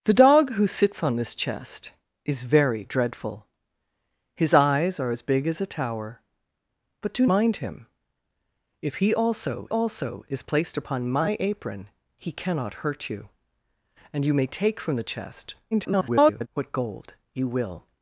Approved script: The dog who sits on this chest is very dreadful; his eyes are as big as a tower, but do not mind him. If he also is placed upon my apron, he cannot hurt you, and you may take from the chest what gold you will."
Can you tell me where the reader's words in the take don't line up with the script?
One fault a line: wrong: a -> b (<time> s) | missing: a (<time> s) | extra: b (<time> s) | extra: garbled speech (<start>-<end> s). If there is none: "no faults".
missing: not (7.3 s)
extra: also (9.7 s)
extra: garbled speech (15.7-16.5 s)